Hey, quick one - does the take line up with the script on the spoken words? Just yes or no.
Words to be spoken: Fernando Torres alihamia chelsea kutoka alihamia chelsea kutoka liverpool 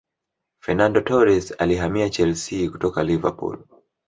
no